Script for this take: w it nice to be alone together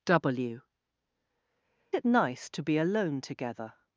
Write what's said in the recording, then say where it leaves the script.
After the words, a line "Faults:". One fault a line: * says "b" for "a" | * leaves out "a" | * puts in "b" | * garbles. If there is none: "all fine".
w it nice to be alone together
Faults:
all fine